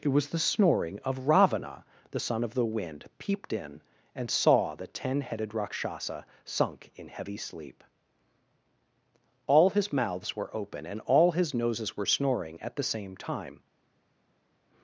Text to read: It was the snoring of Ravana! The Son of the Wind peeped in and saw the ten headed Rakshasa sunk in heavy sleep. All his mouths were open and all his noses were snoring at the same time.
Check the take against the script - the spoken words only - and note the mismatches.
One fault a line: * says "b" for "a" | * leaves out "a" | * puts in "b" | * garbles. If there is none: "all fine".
all fine